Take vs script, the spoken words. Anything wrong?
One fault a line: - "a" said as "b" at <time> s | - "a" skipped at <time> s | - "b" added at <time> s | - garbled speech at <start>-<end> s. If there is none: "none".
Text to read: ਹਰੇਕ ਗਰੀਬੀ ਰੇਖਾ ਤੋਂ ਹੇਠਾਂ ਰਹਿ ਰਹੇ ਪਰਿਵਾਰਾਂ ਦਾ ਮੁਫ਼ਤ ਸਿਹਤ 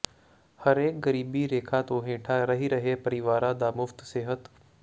none